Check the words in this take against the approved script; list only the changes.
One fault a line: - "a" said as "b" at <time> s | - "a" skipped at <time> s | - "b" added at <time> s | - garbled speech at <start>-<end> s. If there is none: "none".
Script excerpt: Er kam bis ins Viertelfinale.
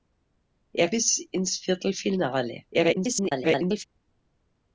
- "kam" skipped at 0.9 s
- garbled speech at 2.7-3.8 s